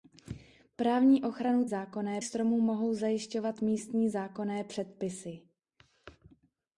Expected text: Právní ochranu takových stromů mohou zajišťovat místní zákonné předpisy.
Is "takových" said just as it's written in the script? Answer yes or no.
no